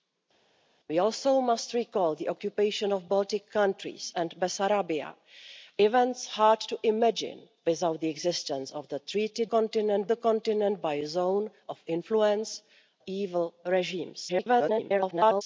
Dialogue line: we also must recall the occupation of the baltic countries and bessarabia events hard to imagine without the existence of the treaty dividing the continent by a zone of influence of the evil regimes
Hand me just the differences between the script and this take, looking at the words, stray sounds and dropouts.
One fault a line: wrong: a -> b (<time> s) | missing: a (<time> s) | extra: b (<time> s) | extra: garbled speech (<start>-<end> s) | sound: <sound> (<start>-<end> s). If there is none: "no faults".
wrong: dividing -> continent (9.4 s)
missing: of the (12.6 s)
extra: garbled speech (14.3-15.4 s)